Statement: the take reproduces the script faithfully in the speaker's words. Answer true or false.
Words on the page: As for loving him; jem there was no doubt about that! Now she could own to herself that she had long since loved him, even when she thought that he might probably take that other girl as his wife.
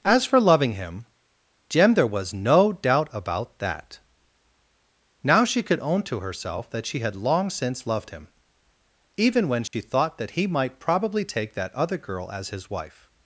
true